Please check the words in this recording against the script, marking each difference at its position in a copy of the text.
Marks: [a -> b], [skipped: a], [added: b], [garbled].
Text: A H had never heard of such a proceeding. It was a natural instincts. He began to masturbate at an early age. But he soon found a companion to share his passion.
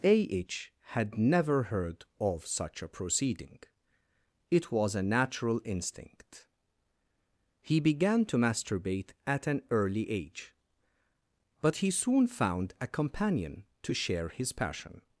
A H had never heard of such a proceeding. It was a natural [instincts. -> instinct] He began to masturbate at an early age. But he soon found a companion to share his passion.